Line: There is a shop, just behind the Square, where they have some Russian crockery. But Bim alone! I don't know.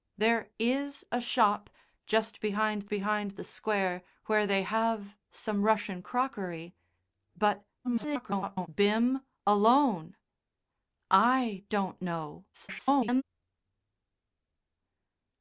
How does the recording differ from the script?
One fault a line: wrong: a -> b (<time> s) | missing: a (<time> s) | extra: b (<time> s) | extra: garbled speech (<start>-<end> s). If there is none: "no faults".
extra: behind (2.9 s)
extra: garbled speech (7.8-8.7 s)
extra: garbled speech (12.5-13.2 s)